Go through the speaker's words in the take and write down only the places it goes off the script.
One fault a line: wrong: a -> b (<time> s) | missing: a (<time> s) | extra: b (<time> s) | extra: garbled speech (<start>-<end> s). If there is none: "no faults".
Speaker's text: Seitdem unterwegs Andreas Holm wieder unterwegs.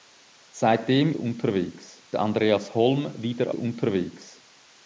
no faults